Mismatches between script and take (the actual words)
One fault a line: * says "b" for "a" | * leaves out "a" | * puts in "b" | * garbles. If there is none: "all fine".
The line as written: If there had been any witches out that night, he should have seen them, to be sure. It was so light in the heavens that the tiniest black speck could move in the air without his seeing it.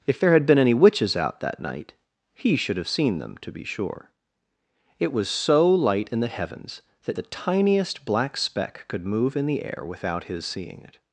all fine